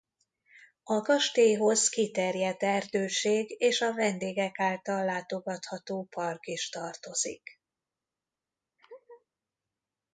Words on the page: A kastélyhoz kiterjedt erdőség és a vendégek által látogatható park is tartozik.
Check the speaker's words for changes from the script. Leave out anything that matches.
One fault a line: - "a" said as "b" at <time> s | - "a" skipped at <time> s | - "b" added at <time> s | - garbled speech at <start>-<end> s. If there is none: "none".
none